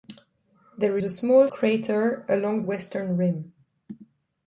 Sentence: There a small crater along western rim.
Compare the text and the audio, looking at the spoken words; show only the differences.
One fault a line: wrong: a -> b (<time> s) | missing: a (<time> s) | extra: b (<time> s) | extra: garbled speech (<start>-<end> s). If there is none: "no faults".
no faults